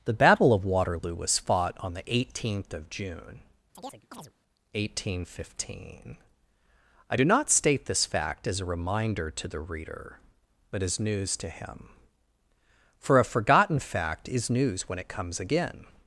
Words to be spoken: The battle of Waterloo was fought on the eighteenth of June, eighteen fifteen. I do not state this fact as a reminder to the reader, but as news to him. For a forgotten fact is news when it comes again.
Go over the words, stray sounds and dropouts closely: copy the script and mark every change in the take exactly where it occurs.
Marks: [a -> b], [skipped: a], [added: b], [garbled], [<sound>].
The battle of Waterloo was fought on the eighteenth of June, [chirp] eighteen fifteen. I do not state this fact as a reminder to the reader, but as news to him. For a forgotten fact is news when it comes again.